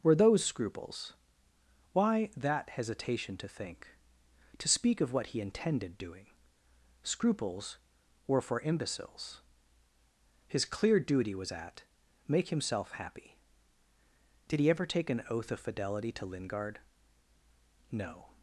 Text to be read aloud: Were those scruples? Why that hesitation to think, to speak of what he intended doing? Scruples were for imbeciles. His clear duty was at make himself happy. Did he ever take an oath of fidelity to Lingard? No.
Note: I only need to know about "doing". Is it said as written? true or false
true